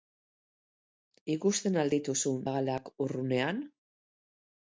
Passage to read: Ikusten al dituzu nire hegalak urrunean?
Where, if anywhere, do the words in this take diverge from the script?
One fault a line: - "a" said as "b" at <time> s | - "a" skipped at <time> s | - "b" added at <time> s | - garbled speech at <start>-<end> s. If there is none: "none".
- "nire" skipped at 2.3 s